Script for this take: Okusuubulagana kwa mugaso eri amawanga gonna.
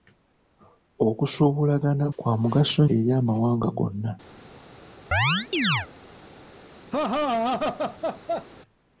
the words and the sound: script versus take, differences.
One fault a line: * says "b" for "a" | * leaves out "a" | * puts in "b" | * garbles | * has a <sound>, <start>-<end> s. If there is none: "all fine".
* has a chirp, 5.1-5.9 s
* has a laugh, 6.9-8.5 s